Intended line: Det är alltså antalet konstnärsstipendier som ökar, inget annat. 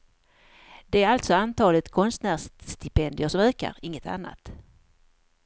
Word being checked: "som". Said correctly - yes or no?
yes